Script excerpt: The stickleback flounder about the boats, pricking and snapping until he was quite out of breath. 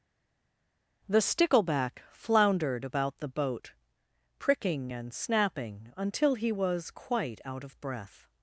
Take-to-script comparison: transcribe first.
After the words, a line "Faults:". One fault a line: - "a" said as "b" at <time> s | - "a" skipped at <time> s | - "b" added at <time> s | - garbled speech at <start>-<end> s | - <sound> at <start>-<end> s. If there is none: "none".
The stickleback floundered about the boat, pricking and snapping until he was quite out of breath.
Faults:
- "flounder" said as "floundered" at 2.1 s
- "boats" said as "boat" at 3.3 s